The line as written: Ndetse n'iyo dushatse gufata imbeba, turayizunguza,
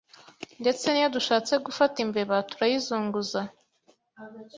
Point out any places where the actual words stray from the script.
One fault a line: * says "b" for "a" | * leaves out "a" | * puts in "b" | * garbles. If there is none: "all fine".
all fine